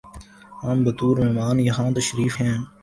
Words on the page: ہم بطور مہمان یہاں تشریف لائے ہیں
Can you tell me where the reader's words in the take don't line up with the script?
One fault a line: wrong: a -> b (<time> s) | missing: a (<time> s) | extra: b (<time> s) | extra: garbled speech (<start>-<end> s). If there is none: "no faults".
missing: لائے (2.3 s)